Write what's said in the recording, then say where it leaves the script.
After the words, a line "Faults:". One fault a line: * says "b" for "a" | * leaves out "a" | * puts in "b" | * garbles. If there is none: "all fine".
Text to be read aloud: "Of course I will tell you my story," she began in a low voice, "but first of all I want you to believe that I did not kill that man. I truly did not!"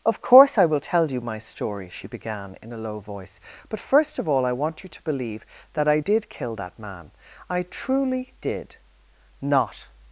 "Of course I will tell you my story," she began in a low voice, "but first of all I want you to believe that I did kill that man. I truly did not!"
Faults:
* leaves out "not"